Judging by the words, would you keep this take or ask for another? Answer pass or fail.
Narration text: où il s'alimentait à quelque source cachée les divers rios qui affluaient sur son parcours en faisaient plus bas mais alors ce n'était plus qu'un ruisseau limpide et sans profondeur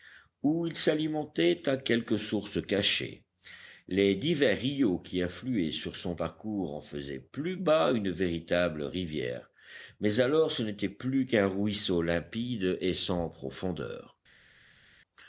fail